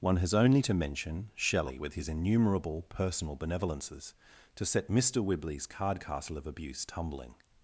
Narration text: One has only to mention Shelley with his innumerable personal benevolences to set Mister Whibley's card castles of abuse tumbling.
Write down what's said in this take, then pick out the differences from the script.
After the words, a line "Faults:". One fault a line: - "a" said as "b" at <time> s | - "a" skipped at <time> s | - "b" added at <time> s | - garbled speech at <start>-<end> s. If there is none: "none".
One has only to mention Shelley with his innumerable personal benevolences to set Mister Whibley's card castle of abuse tumbling.
Faults:
- "castles" said as "castle" at 6.0 s